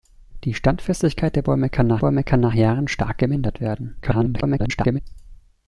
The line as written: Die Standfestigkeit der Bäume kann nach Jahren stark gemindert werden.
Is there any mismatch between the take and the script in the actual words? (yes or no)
yes